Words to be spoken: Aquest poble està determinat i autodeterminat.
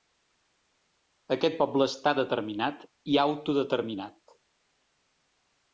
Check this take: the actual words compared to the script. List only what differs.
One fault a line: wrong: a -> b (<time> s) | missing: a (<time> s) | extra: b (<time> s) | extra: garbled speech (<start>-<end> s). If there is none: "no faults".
no faults